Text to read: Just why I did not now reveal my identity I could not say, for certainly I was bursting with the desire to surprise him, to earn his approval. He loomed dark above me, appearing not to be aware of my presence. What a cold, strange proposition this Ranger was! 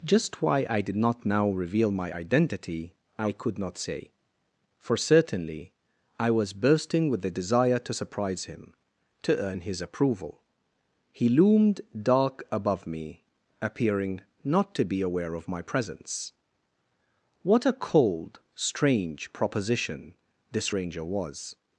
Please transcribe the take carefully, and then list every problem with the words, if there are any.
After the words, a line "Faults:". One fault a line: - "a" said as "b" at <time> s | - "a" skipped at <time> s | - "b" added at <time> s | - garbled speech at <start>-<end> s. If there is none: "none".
Just why I did not now reveal my identity I could not say, for certainly I was bursting with the desire to surprise him, to earn his approval. He loomed dark above me, appearing not to be aware of my presence. What a cold, strange proposition this Ranger was!
Faults:
none